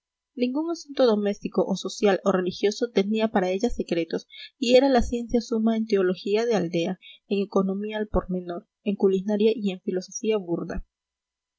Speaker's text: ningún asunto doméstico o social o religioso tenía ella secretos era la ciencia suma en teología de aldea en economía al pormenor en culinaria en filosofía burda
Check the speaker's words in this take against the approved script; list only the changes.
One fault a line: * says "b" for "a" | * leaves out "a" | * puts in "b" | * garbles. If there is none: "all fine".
* puts in "para"
* puts in "y"
* puts in "y"